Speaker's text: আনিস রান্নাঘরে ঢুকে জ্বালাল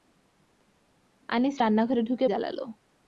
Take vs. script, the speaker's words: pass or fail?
pass